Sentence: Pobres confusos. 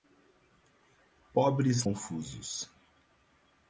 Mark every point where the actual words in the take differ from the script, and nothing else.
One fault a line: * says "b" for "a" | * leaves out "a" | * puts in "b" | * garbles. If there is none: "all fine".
all fine